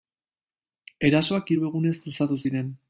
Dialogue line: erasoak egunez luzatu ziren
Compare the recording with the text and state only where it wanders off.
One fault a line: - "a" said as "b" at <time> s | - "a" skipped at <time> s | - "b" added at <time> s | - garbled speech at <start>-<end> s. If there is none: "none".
- "hiru" added at 1.5 s